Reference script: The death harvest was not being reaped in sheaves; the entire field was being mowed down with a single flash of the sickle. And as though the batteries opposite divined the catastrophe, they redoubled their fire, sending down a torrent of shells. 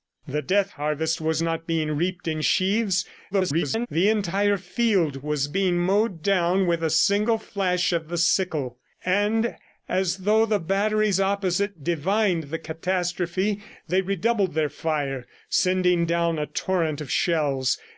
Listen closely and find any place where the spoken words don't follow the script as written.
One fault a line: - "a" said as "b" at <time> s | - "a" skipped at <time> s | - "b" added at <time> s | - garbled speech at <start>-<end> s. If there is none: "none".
- garbled speech at 3.3-3.9 s